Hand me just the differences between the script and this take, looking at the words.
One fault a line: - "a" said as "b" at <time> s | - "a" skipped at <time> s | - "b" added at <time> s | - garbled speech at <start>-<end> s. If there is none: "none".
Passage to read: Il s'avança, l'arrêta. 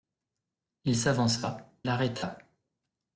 none